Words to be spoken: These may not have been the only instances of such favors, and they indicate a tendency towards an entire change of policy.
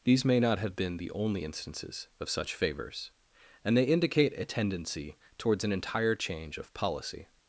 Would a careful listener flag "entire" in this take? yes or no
no